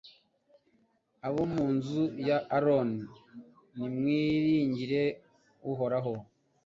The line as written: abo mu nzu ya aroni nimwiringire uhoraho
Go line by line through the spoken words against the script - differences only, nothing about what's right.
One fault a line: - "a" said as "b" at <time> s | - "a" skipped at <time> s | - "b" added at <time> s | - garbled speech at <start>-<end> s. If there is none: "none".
none